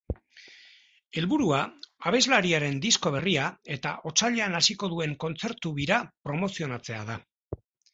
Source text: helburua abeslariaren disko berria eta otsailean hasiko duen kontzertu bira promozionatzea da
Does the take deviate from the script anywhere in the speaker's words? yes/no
no